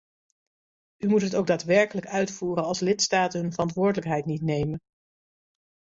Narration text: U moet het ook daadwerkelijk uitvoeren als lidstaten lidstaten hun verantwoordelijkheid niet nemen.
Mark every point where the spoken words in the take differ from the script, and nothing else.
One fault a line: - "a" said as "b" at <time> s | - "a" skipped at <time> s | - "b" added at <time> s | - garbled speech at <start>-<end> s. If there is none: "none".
- "lidstaten" skipped at 3.4 s